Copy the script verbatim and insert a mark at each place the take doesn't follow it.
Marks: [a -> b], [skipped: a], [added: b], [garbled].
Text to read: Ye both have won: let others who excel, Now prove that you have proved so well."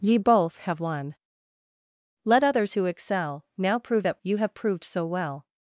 Ye both have won: let others who excel, Now prove that you have proved so well."